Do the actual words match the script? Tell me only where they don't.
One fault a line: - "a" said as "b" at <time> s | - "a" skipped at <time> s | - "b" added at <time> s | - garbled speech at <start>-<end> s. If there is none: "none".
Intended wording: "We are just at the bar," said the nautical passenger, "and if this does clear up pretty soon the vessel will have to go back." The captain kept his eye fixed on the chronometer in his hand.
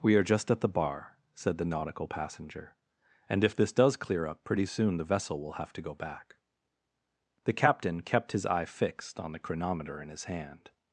none